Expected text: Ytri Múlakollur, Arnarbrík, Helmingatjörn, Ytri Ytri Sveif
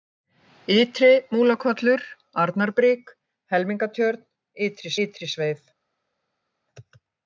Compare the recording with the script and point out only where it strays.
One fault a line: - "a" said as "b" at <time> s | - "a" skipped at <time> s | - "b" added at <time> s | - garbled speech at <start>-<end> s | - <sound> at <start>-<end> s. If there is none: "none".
none